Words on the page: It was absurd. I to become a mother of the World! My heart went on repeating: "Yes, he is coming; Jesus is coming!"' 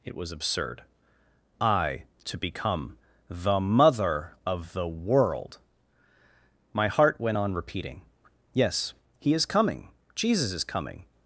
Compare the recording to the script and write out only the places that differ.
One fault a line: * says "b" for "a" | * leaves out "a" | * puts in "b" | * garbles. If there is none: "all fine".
* says "the" for "a"